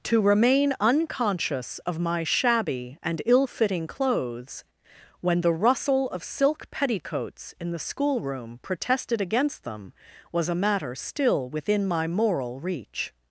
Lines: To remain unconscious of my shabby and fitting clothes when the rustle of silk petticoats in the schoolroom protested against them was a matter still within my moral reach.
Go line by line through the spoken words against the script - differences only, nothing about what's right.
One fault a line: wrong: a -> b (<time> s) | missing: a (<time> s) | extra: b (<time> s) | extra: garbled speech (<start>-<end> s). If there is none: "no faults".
extra: ill (3.2 s)